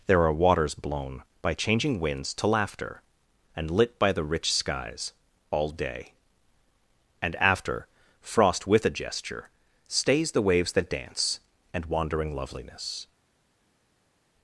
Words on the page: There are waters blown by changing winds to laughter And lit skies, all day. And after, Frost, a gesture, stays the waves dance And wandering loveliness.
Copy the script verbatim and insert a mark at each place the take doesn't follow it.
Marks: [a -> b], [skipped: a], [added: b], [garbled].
There are waters blown by changing winds to laughter And lit [added: by the rich] skies, all day. And after, Frost, [added: with] a gesture, stays the waves [added: that] dance And wandering loveliness.